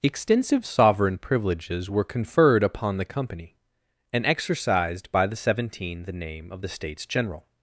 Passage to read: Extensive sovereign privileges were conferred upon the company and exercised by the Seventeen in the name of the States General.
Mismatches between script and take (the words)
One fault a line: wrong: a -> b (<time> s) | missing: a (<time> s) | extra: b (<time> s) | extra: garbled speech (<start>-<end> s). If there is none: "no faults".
missing: in (6.0 s)